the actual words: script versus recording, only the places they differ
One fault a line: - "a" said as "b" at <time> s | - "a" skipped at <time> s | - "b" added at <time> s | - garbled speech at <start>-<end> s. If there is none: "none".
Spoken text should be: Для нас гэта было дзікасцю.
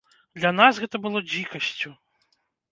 none